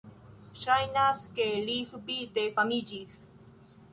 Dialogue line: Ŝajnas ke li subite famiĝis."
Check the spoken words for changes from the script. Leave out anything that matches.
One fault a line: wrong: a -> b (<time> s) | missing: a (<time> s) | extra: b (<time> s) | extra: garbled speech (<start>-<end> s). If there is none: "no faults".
no faults